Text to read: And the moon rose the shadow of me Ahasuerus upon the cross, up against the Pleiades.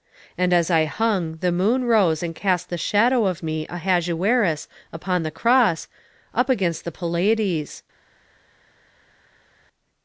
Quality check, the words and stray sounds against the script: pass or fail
fail